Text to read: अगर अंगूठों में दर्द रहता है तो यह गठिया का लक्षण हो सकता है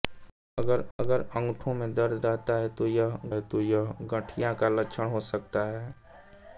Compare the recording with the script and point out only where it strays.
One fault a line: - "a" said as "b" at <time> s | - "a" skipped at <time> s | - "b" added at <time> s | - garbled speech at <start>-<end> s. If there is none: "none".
- "अगर" added at 1.0 s
- "है तो यह" added at 3.3 s